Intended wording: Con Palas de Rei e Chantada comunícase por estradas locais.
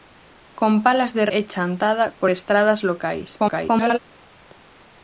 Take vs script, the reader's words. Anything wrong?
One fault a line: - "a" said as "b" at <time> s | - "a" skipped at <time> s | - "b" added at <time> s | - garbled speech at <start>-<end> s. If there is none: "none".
- "Rei" skipped at 1.2 s
- "comunícase" skipped at 2.1 s
- garbled speech at 3.4-4.0 s